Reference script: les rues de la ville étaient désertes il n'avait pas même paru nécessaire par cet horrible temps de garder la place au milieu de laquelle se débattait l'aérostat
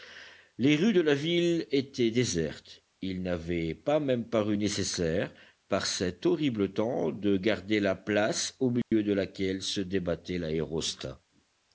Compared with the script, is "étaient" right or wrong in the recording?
right